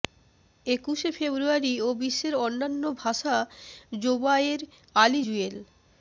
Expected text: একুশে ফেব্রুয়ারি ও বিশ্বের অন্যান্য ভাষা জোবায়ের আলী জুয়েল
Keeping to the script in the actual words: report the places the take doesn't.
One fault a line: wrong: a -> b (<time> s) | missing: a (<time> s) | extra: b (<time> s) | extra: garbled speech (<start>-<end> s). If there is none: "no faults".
no faults